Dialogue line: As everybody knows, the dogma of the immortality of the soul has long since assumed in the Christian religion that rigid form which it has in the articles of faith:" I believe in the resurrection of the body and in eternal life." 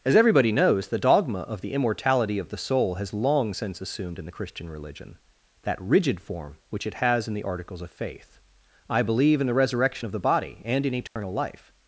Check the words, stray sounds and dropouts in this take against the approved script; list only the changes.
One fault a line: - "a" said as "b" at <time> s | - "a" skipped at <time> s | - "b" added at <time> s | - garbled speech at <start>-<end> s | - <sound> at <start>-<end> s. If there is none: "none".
- dropout at 11.1-11.2 s